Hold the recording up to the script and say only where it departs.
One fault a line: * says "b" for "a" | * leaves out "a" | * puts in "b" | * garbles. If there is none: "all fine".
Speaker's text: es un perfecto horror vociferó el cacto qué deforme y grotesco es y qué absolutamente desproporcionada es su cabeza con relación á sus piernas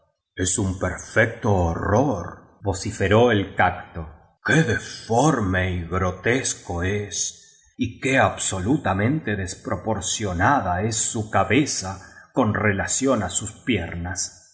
all fine